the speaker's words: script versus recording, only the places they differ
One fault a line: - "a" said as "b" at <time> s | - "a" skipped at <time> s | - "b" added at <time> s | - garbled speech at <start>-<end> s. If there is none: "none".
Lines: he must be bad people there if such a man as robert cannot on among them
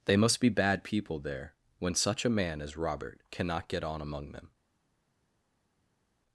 - "he" said as "they" at 0.1 s
- "if" said as "when" at 1.8 s
- "get" added at 3.7 s